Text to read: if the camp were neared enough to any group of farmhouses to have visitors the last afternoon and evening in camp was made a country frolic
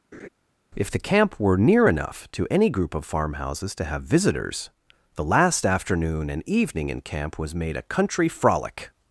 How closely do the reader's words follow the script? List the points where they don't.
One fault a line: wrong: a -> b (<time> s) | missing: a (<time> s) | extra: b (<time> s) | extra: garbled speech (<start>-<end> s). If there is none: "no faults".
wrong: neared -> near (1.6 s)